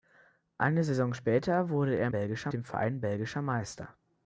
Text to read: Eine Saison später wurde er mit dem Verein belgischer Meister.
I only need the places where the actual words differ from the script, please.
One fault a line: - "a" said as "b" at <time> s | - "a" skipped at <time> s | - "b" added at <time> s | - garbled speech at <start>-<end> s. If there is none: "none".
- "mit" said as "belgischer" at 2.1 s